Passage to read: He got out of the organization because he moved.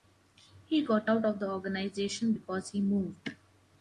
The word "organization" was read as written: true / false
true